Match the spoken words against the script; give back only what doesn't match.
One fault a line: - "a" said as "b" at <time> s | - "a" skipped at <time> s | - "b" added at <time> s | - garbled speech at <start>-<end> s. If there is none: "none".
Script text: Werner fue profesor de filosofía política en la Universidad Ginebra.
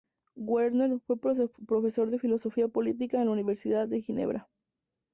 - "de" added at 3.9 s